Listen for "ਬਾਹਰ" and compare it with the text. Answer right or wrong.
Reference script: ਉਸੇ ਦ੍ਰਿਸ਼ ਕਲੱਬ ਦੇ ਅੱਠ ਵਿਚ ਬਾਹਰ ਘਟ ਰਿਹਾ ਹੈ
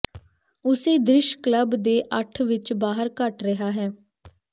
right